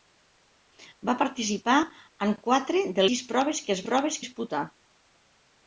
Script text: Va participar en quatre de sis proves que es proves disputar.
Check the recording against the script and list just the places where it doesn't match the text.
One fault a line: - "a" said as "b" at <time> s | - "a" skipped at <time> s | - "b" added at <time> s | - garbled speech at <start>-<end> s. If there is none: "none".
none